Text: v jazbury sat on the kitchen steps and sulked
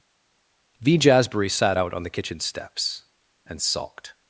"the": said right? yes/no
yes